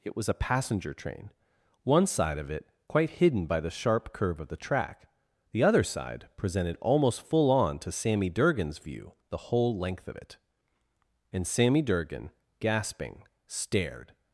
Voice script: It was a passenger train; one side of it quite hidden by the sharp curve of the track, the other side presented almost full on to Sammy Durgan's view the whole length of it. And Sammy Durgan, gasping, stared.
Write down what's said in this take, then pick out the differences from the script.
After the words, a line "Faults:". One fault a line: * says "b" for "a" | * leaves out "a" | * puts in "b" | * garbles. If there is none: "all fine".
It was a passenger train; one side of it quite hidden by the sharp curve of the track, the other side presented almost full on to Sammy Durgan's view the whole length of it. And Sammy Durgan, gasping, stared.
Faults:
all fine